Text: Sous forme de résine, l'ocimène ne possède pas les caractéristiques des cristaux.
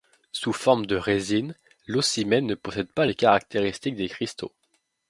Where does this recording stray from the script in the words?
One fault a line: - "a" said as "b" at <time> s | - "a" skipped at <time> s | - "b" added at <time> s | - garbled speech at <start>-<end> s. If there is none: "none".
none